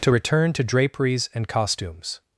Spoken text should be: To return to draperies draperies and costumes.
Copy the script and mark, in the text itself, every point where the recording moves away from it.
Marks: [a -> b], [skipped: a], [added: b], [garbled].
To return to draperies [skipped: draperies] and costumes.